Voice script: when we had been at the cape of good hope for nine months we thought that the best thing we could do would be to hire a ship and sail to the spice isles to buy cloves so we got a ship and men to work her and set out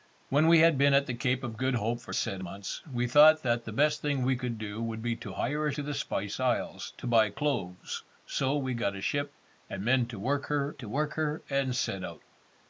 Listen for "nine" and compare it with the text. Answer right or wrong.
wrong